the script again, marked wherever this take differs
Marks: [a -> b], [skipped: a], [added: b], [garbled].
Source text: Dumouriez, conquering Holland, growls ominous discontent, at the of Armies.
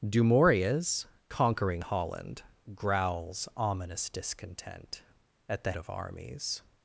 Dumouriez, conquering Holland, growls ominous discontent, at the of Armies.